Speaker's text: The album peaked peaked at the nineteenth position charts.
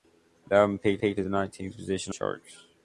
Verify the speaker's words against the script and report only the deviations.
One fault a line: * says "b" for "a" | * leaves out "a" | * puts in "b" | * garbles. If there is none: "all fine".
all fine